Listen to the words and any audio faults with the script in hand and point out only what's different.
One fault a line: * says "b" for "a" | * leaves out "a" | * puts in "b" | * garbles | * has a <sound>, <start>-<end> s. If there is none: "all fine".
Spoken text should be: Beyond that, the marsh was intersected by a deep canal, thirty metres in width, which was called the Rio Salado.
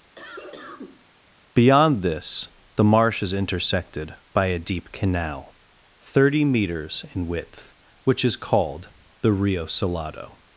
* has a cough, 0.2-1.1 s
* says "this" for "that"
* says "is" for "was"
* says "is" for "was"